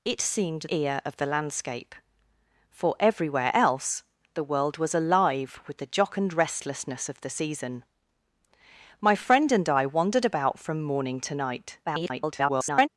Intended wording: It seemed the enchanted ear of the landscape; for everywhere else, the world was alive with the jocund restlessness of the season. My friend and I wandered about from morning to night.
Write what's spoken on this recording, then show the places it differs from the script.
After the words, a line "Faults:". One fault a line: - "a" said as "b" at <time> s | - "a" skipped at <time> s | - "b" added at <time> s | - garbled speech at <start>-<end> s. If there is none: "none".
It seemed ear of the landscape; for everywhere else, the world was alive with the jocund restlessness of the season. My friend and I wandered about from morning to night. [garbled]
Faults:
- "the enchanted" skipped at 0.7 s
- garbled speech at 11.9-12.9 s